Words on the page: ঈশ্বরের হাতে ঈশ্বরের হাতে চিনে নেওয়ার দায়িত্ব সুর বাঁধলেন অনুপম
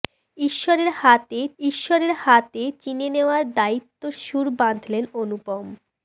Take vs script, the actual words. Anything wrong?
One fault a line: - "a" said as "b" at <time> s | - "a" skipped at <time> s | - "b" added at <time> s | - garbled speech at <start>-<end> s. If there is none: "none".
none